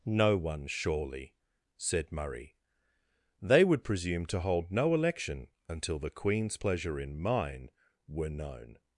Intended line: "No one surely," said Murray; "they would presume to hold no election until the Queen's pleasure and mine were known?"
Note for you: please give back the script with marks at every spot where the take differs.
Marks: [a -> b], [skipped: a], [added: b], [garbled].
"No one surely," said Murray; "they would presume to hold no election until the Queen's pleasure [and -> in] mine were known?"